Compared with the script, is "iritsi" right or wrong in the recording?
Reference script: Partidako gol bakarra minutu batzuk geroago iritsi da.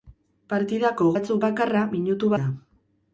wrong